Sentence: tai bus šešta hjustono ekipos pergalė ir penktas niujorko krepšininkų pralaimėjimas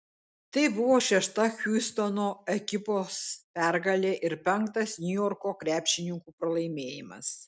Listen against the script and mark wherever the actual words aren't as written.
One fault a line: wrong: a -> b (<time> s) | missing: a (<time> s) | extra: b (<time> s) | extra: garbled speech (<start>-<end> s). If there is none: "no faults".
wrong: bus -> buvo (0.8 s)